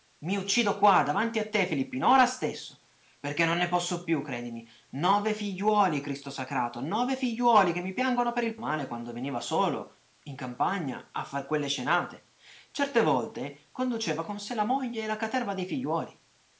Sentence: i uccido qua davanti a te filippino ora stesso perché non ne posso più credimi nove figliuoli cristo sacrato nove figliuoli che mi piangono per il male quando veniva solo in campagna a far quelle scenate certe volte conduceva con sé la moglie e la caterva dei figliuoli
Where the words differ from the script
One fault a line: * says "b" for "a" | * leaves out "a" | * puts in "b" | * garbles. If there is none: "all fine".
all fine